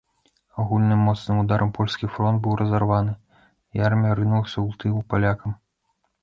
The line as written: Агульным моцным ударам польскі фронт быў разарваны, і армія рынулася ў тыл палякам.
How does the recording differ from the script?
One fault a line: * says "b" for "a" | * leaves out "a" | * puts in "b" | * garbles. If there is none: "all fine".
all fine